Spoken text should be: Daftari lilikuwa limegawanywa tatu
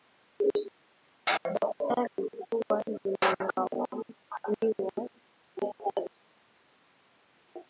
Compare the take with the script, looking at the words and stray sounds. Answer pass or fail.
pass